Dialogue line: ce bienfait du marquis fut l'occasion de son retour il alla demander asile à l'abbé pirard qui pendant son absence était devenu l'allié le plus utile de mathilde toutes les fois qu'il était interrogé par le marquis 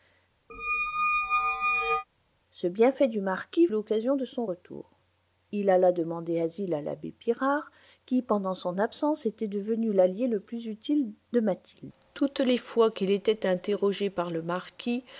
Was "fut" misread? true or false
true